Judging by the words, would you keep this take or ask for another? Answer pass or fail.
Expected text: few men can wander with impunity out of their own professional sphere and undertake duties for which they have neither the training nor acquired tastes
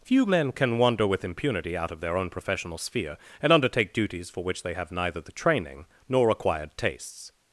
pass